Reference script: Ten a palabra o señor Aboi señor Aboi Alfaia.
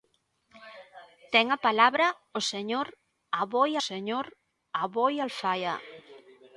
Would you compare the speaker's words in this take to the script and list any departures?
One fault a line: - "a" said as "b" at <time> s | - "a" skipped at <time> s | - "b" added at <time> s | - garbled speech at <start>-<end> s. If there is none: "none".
none